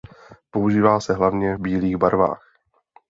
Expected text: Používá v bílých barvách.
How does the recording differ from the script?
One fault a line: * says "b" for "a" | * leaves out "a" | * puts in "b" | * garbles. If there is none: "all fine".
* puts in "se hlavně"